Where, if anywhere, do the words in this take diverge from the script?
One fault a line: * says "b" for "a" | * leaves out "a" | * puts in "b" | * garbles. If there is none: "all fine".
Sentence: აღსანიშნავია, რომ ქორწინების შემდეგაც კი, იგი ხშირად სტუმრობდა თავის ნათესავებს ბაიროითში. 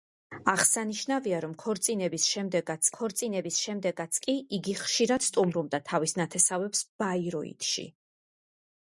* puts in "ქორწინების შემდეგაც"